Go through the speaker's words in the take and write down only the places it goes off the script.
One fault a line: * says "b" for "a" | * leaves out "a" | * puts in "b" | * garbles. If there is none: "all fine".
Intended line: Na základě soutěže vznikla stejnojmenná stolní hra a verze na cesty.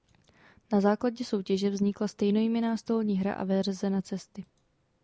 all fine